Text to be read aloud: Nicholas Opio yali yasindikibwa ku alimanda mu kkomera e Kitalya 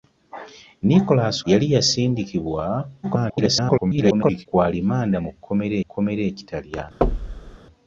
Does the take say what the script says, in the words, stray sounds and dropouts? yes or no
no